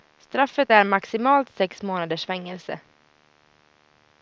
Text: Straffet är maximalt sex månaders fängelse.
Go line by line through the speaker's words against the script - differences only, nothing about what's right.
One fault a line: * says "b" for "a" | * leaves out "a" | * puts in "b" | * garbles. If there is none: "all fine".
all fine